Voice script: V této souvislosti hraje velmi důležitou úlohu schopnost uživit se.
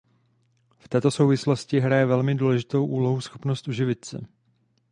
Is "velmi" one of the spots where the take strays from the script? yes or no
no